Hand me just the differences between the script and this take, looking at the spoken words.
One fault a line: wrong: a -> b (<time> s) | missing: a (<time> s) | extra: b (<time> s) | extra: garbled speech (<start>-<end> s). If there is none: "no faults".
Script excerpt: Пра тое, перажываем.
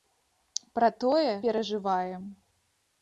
no faults